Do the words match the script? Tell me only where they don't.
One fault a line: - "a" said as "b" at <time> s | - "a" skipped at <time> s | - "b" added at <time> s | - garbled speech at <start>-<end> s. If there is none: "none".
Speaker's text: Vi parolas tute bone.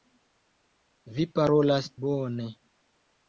- "tute" skipped at 1.9 s